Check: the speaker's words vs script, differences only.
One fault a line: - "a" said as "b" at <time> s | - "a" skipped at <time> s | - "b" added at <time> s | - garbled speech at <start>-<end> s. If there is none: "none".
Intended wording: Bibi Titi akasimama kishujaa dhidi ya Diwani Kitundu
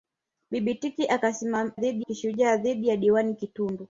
- "akasimama" said as "dhidi" at 1.7 s